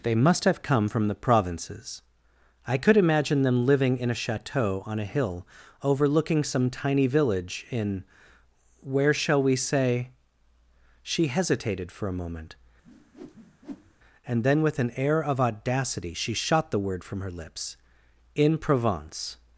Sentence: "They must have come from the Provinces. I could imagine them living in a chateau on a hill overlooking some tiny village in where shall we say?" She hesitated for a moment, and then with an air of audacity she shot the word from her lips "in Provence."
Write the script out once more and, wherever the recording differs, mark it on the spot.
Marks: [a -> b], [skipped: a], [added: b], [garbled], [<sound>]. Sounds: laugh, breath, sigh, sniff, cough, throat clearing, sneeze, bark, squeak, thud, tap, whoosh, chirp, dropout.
"They must have come from the Provinces. I could imagine them living in a chateau on a hill overlooking some tiny village in where shall we say?" She hesitated for a moment, [whoosh] and then with an air of audacity she shot the word from her lips "in Provence."